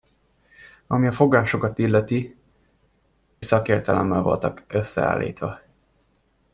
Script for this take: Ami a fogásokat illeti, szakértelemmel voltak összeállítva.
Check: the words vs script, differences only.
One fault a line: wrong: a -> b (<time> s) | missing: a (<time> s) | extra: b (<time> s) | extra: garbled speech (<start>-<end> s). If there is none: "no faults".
no faults